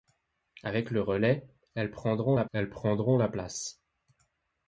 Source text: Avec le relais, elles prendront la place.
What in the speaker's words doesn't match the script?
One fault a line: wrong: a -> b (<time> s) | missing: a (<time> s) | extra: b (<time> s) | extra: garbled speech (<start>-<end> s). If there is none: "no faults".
extra: elles prendront la (2.5 s)